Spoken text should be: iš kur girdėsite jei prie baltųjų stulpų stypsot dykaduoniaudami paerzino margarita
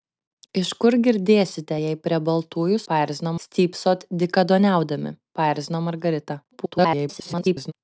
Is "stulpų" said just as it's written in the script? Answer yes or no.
no